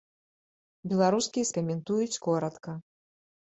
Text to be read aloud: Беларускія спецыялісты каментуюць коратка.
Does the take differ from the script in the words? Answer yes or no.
yes